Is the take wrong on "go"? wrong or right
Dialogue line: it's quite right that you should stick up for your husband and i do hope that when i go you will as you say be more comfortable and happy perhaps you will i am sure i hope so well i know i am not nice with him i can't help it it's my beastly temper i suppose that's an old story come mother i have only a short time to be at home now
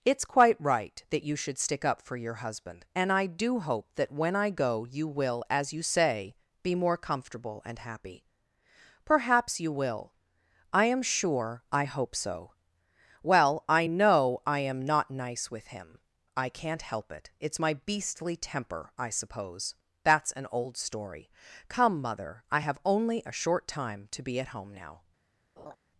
right